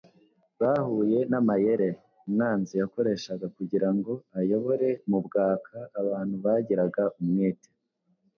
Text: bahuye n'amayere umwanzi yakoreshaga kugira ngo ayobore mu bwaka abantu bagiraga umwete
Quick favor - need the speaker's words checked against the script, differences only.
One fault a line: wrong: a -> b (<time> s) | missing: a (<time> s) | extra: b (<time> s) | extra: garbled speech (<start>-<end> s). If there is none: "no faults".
no faults